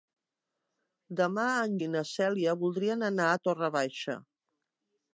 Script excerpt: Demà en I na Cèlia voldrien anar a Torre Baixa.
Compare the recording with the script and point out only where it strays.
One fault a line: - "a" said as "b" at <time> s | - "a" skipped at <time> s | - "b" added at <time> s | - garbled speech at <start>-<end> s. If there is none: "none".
none